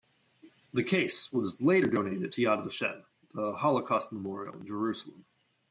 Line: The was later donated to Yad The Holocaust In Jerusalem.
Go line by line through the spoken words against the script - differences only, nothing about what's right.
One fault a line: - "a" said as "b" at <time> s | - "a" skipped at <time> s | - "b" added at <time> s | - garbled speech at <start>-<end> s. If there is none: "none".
- "case" added at 0.8 s
- "Vashem" added at 2.6 s
- "Memorial" added at 4.1 s